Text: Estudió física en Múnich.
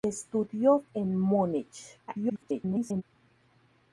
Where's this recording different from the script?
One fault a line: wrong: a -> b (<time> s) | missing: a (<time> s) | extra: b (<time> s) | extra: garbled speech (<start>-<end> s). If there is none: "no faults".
missing: física (0.8 s)
extra: garbled speech (2.1-3.0 s)